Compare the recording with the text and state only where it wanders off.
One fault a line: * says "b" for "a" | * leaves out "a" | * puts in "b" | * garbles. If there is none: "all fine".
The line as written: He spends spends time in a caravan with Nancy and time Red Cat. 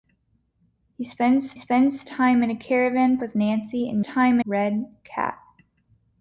all fine